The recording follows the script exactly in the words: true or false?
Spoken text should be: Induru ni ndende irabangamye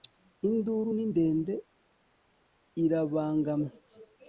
true